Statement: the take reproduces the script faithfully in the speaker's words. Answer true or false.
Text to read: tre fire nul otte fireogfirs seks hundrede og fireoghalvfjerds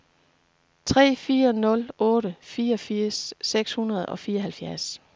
true